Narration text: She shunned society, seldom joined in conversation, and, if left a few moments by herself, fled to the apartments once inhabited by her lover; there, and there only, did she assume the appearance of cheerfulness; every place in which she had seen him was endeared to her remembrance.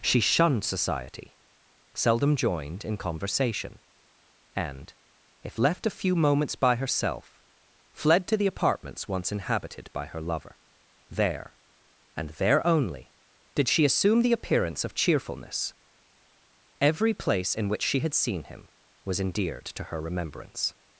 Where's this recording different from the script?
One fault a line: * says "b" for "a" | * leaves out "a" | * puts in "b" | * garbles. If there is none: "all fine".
all fine